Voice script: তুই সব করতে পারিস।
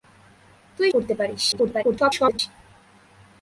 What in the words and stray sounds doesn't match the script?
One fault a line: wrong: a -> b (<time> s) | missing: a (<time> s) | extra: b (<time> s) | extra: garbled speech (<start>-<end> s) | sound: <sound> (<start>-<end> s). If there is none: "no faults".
missing: সব (0.9 s)
extra: garbled speech (1.5-2.4 s)